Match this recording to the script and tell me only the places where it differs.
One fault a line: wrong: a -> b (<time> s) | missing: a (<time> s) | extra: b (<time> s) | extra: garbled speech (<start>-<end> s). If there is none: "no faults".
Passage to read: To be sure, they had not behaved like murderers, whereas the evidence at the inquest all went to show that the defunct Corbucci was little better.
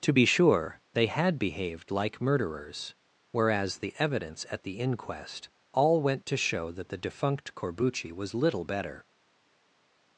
missing: not (1.4 s)